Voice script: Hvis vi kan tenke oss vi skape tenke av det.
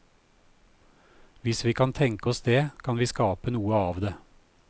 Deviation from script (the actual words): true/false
true